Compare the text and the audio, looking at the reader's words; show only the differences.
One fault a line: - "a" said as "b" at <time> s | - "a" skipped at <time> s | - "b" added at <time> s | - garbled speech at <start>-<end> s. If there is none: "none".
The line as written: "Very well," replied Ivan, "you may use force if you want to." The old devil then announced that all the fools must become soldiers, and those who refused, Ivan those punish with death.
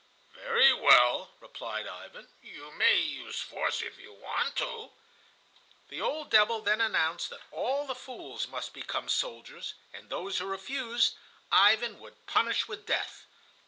- "those" said as "would" at 12.0 s